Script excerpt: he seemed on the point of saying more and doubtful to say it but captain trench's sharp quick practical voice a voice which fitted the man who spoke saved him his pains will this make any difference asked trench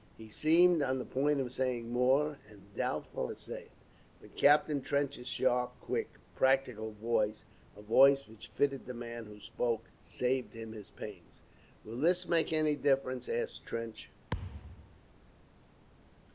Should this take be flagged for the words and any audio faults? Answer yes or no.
yes